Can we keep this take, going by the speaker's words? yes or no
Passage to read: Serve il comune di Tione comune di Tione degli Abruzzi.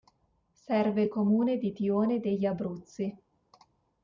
no